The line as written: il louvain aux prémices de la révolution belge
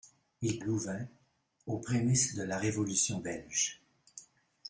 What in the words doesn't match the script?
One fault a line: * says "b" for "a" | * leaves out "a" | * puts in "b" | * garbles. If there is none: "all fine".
all fine